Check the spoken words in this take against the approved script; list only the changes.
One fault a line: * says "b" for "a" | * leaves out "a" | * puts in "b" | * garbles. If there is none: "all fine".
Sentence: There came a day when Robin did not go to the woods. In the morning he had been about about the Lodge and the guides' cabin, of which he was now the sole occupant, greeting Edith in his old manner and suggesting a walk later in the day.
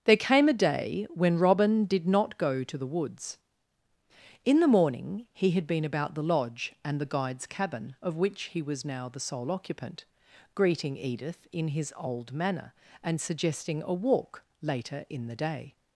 * leaves out "about"